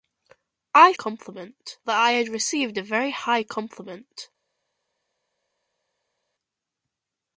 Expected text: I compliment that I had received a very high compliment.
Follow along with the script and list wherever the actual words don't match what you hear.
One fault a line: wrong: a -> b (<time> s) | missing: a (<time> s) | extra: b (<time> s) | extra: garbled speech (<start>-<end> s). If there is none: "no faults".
no faults